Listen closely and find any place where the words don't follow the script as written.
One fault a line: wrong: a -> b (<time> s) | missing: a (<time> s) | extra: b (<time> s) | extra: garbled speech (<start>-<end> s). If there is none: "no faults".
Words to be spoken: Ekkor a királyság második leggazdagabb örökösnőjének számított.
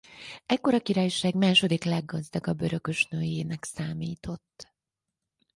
no faults